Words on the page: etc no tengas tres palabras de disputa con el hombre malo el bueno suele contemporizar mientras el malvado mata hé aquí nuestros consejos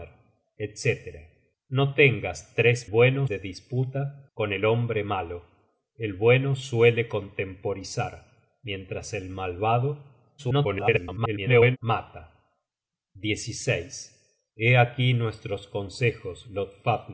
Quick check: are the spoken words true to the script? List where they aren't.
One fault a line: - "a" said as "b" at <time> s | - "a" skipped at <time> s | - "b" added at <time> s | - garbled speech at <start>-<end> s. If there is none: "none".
- "palabras" said as "bueno" at 2.9 s
- garbled speech at 10.4-11.8 s